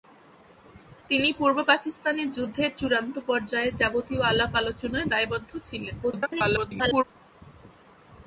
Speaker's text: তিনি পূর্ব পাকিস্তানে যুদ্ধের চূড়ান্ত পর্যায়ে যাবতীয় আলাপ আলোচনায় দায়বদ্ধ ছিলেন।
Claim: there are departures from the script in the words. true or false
true